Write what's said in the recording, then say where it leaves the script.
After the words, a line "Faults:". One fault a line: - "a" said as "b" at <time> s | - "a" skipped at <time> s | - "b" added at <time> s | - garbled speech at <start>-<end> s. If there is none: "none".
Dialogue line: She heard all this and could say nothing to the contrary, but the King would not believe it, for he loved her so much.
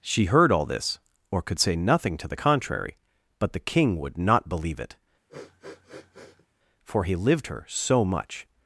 She heard all this or could say nothing to the contrary, but the King would not believe it, for he lived her so much.
Faults:
- "and" said as "or" at 1.3 s
- "loved" said as "lived" at 7.2 s